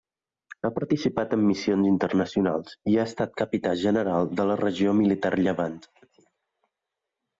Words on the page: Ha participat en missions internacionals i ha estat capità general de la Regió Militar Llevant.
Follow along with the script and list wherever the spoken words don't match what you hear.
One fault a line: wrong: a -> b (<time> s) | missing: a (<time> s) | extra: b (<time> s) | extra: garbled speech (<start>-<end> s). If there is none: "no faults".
no faults